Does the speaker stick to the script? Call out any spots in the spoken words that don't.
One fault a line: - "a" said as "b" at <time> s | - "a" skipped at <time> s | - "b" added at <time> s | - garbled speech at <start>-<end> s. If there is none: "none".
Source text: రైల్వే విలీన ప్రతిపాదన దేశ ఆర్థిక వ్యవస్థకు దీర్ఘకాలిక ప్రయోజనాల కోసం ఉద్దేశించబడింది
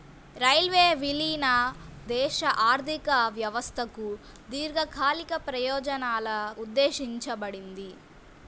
- "ప్రతిపాదన" skipped at 1.5 s
- "కోసం" skipped at 6.3 s